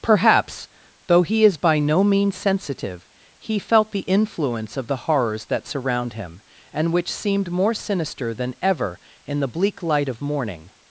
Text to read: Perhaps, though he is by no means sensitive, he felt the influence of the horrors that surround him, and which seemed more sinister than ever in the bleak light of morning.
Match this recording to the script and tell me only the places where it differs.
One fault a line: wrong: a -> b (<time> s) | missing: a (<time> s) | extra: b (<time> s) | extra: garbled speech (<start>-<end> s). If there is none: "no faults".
no faults